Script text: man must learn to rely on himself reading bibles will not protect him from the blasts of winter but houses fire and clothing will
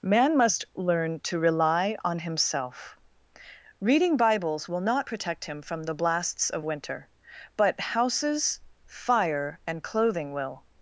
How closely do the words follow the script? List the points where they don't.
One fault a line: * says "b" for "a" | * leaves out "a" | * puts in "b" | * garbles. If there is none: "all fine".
all fine